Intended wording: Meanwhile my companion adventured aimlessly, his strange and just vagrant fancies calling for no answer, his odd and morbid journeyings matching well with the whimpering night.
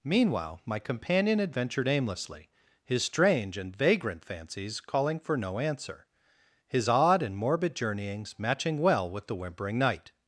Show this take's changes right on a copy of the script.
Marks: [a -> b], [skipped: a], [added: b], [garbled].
Meanwhile my companion adventured aimlessly, his strange and [skipped: just] vagrant fancies calling for no answer, his odd and morbid journeyings matching well with the whimpering night.